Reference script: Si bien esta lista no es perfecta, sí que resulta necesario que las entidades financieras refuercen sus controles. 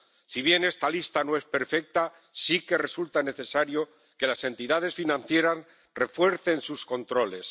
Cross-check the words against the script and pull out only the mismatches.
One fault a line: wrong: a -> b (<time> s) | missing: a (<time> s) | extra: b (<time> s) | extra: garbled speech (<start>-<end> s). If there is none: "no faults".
no faults